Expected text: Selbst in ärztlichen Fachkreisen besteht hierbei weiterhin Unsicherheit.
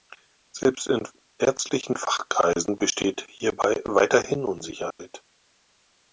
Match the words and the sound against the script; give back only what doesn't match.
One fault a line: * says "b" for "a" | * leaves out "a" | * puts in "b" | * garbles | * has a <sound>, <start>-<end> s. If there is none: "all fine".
* has a dropout, 4.9-5.0 s